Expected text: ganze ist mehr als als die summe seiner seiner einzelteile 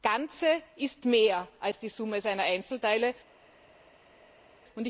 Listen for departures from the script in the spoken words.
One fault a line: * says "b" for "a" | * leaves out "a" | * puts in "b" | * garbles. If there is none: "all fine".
* leaves out "als"
* leaves out "seiner"